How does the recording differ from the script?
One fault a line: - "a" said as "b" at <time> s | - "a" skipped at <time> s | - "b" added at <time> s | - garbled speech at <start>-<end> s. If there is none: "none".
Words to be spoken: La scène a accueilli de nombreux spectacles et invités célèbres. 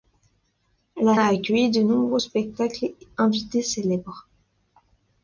- "scène" skipped at 1.2 s
- "et" skipped at 2.9 s